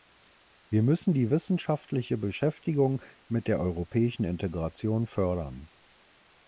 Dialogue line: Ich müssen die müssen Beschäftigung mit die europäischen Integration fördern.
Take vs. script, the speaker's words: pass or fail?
fail